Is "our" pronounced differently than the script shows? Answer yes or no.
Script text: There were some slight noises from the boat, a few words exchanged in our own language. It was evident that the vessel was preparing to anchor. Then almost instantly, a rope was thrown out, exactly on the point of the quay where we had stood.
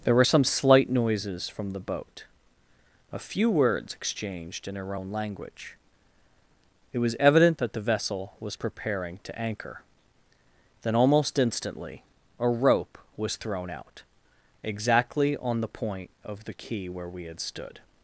yes